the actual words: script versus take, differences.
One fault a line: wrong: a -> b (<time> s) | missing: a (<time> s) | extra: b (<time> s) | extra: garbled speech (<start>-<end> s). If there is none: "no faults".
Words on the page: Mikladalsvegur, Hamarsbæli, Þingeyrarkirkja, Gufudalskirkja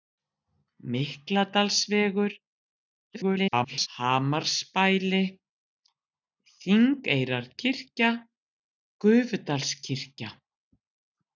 extra: garbled speech (3.1-3.9 s)